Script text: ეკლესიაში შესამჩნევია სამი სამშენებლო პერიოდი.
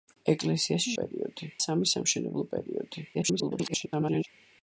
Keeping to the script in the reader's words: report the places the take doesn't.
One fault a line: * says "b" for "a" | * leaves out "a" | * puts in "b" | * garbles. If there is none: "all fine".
* says "პერიოდი" for "შესამჩნევია"
* garbles